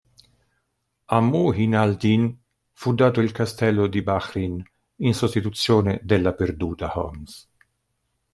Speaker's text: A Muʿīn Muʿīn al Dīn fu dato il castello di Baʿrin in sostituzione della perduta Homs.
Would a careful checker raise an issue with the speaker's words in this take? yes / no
yes